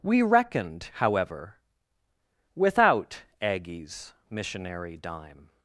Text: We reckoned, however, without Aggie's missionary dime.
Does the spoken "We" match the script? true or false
true